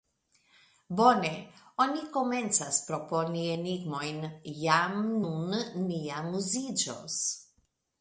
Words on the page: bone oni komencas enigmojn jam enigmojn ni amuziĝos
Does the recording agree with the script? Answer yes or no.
no